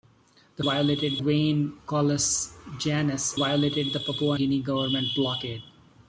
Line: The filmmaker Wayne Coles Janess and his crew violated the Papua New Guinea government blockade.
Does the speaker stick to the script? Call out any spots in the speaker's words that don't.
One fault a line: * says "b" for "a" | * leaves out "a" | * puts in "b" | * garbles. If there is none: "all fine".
* says "violated" for "filmmaker"
* leaves out "and his crew"
* leaves out "New"